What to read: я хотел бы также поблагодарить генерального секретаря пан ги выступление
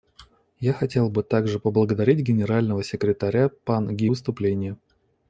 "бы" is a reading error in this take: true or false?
false